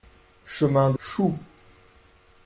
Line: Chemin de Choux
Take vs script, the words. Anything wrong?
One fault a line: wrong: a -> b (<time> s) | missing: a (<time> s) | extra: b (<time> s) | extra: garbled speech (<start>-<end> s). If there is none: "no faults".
no faults